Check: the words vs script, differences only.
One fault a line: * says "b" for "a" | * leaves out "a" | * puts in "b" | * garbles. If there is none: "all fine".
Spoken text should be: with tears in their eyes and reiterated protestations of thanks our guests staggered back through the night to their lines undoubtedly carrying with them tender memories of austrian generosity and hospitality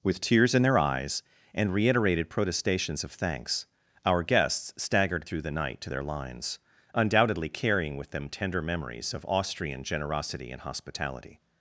* leaves out "back"